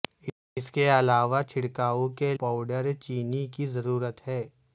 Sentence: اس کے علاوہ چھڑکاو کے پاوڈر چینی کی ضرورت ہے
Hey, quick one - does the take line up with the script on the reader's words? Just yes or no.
yes